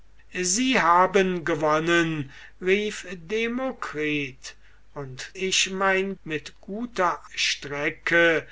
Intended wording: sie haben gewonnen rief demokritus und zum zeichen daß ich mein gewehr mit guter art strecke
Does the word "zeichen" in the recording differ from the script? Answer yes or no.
yes